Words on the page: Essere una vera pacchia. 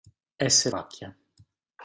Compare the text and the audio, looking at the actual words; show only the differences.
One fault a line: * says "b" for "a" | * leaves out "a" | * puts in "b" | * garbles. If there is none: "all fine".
* leaves out "una vera"